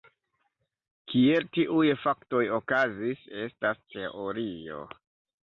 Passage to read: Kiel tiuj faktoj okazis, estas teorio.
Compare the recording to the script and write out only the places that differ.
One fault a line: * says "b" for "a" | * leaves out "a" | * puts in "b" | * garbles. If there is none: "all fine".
all fine